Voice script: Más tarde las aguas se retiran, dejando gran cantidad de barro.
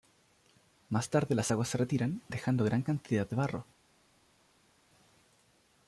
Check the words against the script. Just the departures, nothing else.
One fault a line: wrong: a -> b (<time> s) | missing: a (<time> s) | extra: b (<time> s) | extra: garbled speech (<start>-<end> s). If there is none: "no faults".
no faults